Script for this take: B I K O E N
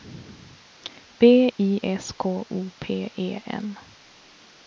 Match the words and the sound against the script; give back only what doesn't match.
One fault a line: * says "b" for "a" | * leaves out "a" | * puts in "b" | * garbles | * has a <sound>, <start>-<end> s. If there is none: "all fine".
* puts in "S"
* puts in "P"